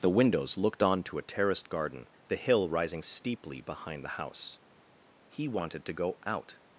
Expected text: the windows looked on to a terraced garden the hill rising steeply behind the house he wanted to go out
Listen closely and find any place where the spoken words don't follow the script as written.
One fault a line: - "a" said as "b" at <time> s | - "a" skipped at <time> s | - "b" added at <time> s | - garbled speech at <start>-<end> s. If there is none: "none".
none